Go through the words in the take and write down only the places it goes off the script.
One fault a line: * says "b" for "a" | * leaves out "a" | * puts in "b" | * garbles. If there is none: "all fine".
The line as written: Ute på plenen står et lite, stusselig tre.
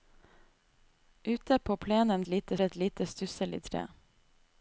* says "lite" for "står"